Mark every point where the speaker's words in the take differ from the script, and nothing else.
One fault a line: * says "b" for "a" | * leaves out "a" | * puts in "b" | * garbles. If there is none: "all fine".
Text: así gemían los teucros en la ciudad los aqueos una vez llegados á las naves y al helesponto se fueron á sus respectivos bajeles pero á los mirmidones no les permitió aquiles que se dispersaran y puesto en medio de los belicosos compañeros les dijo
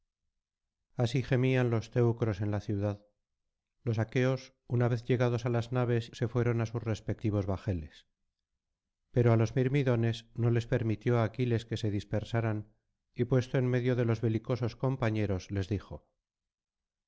* leaves out "y al helesponto"